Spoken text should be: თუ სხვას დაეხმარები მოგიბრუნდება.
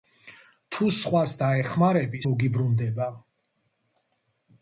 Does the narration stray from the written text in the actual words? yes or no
no